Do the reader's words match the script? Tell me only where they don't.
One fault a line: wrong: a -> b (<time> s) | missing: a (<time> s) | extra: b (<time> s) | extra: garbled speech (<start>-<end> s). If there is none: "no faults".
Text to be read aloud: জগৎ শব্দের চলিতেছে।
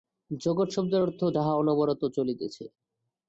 extra: অর্থ যাহা অনবরত (1.0 s)